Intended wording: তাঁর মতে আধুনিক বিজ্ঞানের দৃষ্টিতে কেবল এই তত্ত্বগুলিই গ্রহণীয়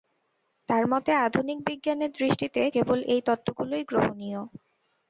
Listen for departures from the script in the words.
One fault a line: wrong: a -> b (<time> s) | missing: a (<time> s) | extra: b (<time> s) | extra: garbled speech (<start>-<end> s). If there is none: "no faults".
no faults